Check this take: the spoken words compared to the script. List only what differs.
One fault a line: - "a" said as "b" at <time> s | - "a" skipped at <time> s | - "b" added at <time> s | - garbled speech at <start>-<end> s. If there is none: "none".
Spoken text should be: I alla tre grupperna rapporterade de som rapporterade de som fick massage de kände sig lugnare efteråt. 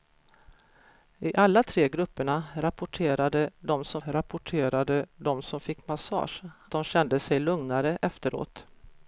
none